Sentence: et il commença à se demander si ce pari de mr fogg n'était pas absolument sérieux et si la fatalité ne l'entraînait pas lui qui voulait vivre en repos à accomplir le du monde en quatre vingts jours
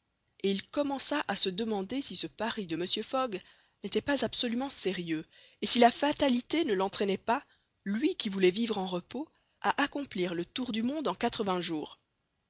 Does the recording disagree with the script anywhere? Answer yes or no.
yes